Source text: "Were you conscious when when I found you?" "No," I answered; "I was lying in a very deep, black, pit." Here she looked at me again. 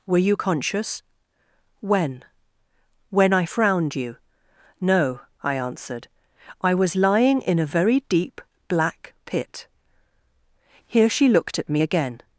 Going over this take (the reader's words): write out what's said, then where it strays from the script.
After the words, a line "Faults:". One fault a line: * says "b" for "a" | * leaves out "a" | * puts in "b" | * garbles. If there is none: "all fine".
"Were you conscious when when I frowned you?" "No," I answered; "I was lying in a very deep, black, pit." Here she looked at me again.
Faults:
* says "frowned" for "found"